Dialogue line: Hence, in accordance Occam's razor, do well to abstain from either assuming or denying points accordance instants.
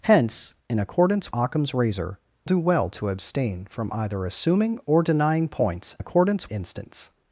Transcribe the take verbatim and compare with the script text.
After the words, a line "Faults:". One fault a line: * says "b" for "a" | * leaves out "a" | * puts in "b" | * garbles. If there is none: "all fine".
Hence, in accordance Occam's razor, do well to abstain from either assuming or denying points accordance instants.
Faults:
all fine